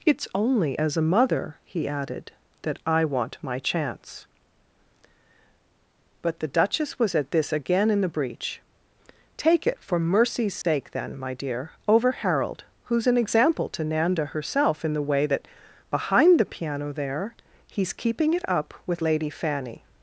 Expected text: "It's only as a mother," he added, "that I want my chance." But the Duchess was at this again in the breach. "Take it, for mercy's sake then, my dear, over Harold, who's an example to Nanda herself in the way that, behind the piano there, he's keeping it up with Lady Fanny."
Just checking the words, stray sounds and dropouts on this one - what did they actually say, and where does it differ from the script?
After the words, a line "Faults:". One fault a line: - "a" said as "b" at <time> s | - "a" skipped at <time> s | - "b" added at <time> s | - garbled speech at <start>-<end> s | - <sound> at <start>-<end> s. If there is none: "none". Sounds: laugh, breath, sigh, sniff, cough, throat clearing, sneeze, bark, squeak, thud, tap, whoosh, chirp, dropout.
"It's only as a mother," he added, "that I want my chance." But the Duchess was at this again in the breach. "Take it, for mercy's sake then, my dear, over Harold, who's an example to Nanda herself in the way that, behind the piano there, he's keeping it up with Lady Fanny."
Faults:
- dropout at 10.6-10.6 s